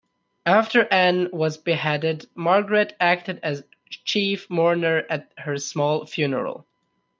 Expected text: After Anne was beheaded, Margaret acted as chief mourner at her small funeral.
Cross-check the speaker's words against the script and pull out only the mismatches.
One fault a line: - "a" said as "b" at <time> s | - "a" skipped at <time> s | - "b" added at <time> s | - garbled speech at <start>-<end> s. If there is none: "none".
none